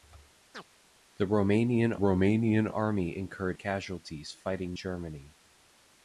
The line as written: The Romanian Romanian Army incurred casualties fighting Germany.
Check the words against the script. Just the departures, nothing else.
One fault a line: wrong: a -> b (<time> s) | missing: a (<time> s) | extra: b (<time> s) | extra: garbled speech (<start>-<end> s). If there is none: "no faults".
no faults